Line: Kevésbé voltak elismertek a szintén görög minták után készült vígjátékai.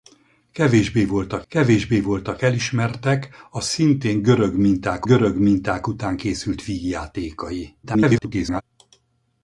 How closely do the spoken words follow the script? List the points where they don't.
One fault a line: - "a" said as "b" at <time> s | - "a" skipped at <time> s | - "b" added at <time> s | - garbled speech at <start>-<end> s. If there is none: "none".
- "kevésbé voltak" added at 1.5 s
- "görög minták" added at 5.0 s
- garbled speech at 7.8-8.6 s